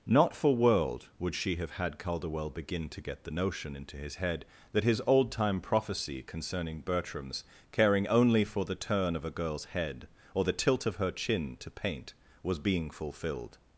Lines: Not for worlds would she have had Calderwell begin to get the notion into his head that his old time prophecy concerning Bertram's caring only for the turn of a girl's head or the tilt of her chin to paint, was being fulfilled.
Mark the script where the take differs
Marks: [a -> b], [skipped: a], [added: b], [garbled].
Not for [worlds -> world] would she have had Calderwell begin to get the notion into his head that his old time prophecy concerning Bertram's caring only for the turn of a girl's head or the tilt of her chin to paint, was being fulfilled.